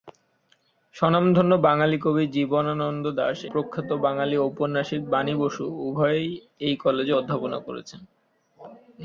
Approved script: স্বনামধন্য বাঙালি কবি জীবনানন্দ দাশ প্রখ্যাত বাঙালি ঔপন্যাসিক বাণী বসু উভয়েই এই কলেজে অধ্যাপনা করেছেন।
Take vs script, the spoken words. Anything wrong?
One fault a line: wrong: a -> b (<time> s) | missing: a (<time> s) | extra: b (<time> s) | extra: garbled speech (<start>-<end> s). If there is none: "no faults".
no faults